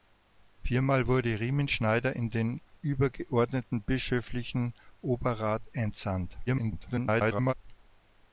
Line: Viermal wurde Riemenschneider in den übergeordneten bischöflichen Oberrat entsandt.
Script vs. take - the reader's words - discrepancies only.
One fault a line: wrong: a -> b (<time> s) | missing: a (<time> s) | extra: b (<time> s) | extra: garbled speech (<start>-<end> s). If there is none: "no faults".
extra: garbled speech (6.5-7.5 s)